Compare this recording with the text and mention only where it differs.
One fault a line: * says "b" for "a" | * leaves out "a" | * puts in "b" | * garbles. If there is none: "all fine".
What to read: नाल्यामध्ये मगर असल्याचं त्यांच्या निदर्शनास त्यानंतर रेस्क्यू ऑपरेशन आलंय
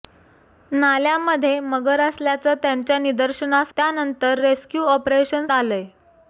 all fine